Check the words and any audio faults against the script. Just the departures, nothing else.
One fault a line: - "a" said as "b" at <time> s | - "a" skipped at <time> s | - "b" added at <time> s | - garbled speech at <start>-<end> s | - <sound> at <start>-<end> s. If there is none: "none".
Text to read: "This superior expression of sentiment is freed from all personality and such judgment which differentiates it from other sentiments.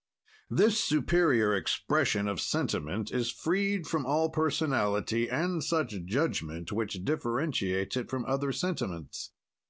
none